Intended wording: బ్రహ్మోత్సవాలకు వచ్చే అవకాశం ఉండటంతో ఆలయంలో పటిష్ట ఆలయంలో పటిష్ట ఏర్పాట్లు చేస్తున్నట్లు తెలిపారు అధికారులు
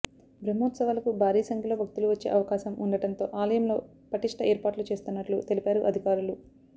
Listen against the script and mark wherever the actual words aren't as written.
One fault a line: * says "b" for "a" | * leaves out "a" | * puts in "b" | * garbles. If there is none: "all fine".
* puts in "భారీ సంఖ్యలో భక్తులు"
* leaves out "ఆలయంలో పటిష్ట"